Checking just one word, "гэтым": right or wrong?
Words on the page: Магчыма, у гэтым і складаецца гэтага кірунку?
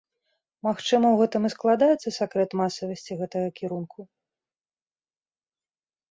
right